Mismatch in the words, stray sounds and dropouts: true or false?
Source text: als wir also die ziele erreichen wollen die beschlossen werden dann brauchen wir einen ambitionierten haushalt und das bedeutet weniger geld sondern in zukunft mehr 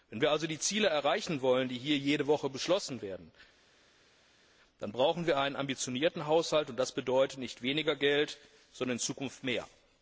true